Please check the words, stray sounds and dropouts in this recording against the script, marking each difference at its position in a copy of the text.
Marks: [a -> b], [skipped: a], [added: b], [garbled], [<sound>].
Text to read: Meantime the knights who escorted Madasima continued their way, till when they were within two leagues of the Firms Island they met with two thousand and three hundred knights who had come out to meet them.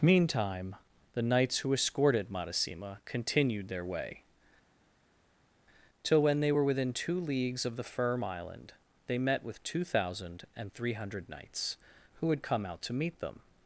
Meantime the knights who escorted Madasima continued their way, till when they were within two leagues of the [Firms -> Firm] Island they met with two thousand and three hundred knights who had come out to meet them.